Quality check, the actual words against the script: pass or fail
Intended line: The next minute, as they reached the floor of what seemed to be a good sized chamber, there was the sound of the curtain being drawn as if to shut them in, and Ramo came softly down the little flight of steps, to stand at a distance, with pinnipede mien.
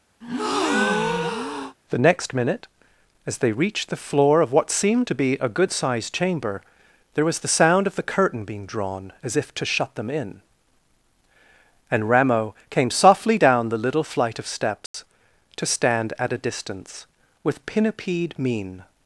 pass